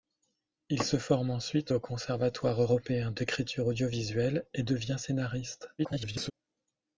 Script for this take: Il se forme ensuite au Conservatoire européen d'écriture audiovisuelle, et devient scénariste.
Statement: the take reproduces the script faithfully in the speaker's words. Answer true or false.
false